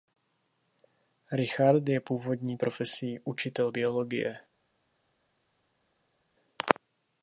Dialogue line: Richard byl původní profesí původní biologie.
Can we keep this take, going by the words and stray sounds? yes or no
no